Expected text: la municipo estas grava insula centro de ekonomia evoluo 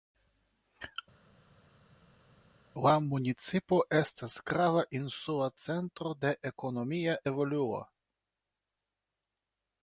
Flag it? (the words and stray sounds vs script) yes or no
no